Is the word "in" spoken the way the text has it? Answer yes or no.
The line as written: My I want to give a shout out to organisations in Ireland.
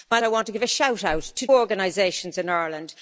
yes